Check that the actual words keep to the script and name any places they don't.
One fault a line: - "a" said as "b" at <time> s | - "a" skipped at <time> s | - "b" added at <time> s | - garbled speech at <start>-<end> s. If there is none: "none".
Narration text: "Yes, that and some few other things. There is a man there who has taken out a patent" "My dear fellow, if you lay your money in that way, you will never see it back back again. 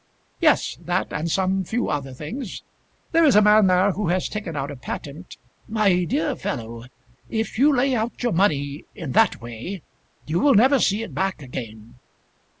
- "out" added at 8.0 s
- "back" skipped at 11.4 s